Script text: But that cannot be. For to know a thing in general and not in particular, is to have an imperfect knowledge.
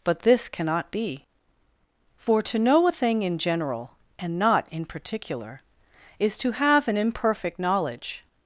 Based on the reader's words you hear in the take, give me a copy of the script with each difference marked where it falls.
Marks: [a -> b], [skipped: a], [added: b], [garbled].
But [that -> this] cannot be. For to know a thing in general and not in particular, is to have an imperfect knowledge.